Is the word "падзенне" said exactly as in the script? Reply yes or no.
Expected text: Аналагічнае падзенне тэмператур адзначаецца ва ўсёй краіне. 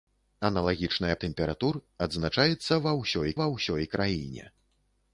no